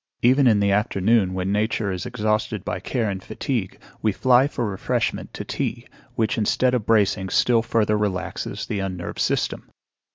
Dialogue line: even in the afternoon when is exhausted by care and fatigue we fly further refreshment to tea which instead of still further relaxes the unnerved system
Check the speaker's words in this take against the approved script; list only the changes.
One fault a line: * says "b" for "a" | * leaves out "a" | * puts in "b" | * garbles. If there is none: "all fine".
* puts in "nature"
* says "for" for "further"
* puts in "bracing"